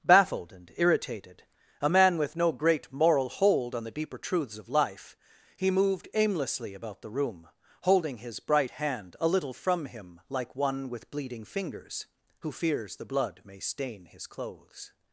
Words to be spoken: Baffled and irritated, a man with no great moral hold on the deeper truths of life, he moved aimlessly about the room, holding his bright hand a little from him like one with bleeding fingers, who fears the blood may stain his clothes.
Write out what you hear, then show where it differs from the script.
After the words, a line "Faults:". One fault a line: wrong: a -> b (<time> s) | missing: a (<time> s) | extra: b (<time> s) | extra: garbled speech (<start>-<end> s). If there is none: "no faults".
Baffled and irritated, a man with no great moral hold on the deeper truths of life, he moved aimlessly about the room, holding his bright hand a little from him like one with bleeding fingers, who fears the blood may stain his clothes.
Faults:
no faults